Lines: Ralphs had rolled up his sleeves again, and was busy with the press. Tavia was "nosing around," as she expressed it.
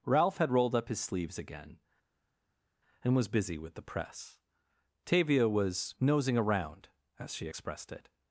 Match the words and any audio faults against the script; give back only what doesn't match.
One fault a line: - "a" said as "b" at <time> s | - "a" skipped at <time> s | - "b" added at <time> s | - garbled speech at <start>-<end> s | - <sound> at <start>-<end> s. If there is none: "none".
- "Ralphs" said as "Ralph" at 0.0 s